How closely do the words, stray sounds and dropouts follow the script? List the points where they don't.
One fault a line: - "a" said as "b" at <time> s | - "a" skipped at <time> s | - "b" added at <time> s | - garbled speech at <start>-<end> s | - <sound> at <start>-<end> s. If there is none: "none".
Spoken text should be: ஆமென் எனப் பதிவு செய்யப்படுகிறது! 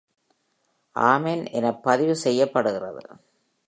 none